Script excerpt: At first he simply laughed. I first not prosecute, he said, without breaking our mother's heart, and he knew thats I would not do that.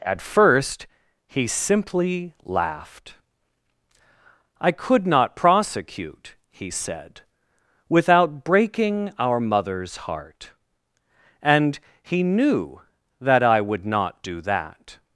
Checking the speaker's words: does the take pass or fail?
fail